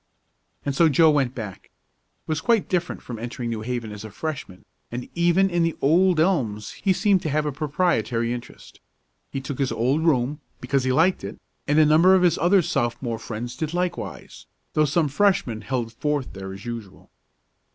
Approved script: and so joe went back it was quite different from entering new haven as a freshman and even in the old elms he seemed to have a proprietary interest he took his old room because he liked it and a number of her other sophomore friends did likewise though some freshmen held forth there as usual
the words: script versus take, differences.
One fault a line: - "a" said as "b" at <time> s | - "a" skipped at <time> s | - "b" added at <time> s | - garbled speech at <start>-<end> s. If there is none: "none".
- "her" said as "his" at 12.2 s